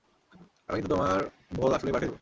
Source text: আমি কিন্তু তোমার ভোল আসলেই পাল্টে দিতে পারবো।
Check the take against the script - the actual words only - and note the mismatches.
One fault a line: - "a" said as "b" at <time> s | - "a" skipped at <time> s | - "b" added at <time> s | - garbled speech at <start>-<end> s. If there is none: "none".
- "দিতে" skipped at 2.1 s